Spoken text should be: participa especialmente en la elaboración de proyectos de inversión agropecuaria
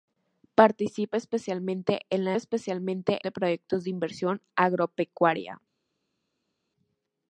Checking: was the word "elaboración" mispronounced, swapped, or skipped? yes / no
yes